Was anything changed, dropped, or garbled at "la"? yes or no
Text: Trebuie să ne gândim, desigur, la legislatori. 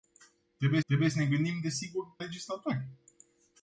yes